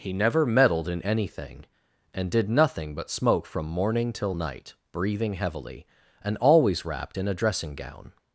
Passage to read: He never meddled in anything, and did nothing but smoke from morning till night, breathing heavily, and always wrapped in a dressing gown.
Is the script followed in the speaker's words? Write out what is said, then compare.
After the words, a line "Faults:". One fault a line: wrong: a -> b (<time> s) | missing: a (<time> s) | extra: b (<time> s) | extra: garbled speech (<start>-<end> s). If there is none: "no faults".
He never meddled in anything, and did nothing but smoke from morning till night, breathing heavily, and always wrapped in a dressing gown.
Faults:
no faults